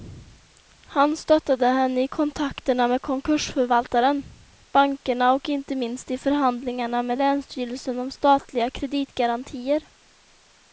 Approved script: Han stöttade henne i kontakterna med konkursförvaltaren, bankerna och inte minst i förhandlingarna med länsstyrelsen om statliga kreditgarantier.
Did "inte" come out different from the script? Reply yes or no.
no